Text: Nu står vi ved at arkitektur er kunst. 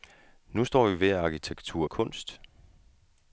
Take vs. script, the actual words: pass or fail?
pass